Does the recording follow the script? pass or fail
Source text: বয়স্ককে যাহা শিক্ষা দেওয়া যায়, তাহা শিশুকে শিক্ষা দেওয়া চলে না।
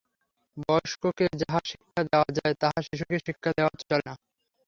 pass